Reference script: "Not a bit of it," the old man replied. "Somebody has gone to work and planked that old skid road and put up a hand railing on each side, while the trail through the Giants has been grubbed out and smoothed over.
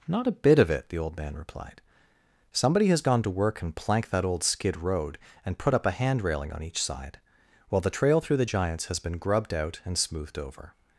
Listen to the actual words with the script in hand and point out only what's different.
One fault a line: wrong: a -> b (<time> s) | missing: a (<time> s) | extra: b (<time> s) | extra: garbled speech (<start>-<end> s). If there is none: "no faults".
no faults